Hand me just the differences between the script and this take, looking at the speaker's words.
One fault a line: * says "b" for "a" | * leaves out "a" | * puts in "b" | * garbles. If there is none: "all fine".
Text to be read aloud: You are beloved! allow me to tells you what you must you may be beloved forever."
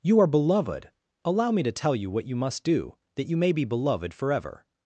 * says "tell" for "tells"
* puts in "do that"